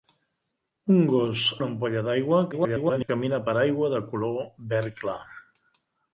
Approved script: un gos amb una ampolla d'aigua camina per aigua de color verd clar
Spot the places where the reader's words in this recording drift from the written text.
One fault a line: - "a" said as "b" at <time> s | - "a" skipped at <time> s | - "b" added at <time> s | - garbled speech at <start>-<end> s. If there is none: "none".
- "amb" skipped at 1.4 s
- garbled speech at 2.5-3.1 s